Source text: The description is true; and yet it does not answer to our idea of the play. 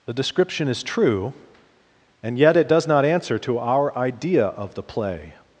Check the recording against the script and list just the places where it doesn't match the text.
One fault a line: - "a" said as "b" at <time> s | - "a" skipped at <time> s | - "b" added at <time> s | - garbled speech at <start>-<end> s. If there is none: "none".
none